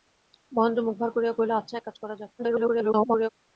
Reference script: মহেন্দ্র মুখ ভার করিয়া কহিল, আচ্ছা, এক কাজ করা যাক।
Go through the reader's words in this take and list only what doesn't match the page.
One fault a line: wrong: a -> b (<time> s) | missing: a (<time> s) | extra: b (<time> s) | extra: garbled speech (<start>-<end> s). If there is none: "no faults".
extra: garbled speech (2.4-3.3 s)